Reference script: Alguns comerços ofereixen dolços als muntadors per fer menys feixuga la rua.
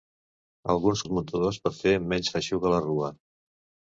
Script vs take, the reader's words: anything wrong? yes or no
yes